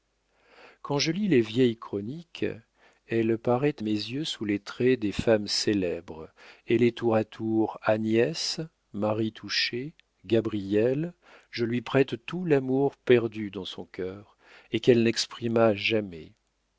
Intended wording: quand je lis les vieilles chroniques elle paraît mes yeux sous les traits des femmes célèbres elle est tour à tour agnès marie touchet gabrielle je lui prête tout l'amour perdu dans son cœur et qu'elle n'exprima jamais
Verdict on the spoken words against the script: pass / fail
pass